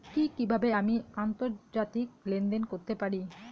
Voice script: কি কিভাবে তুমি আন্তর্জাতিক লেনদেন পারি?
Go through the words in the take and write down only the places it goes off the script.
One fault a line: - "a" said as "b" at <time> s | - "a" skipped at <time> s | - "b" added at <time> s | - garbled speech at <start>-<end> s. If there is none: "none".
- "তুমি" said as "আমি" at 0.7 s
- "করতে" added at 2.6 s